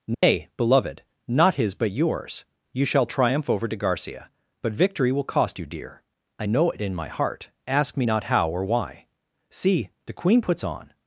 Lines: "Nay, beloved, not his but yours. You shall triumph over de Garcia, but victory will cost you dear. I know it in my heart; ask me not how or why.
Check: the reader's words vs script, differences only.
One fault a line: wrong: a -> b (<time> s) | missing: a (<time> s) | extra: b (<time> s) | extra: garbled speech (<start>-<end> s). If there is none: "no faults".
extra: See the Queen puts on (9.5 s)